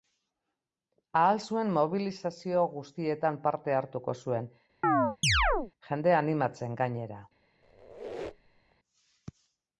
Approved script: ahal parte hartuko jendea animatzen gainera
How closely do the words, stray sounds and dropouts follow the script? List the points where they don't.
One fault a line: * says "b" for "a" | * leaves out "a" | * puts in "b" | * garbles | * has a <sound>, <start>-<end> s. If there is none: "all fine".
* puts in "zuen mobilizazio guztietan"
* puts in "zuen"
* has a chirp, 4.8-5.7 s
* has a squeak, 7.6-8.8 s